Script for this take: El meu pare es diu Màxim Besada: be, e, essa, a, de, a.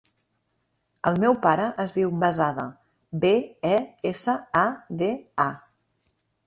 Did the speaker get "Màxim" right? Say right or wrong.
wrong